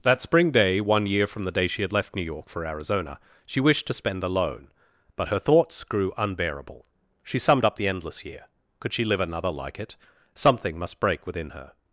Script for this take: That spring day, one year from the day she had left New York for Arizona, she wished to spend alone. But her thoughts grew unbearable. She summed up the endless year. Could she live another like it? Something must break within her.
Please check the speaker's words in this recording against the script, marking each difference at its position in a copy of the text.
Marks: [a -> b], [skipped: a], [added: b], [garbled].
That spring day, one year from the day she had left New York for Arizona, she wished to spend alone. But her thoughts grew unbearable. She summed up the endless year. Could she live another like it? Something must break within her.